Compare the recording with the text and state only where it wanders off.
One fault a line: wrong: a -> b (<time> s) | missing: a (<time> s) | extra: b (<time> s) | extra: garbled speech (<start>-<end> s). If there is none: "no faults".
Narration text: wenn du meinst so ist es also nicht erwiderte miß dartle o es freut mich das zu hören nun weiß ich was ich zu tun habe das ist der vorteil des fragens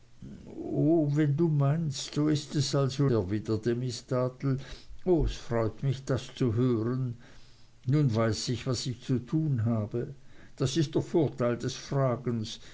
missing: nicht (3.1 s)